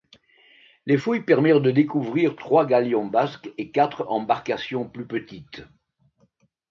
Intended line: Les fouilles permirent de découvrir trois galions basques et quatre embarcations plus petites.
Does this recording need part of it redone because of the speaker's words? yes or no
no